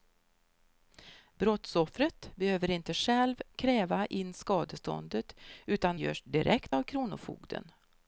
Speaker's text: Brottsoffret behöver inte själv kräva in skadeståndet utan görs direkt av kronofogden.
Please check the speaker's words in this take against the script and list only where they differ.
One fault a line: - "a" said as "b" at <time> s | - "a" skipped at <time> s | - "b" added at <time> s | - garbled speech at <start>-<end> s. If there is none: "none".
none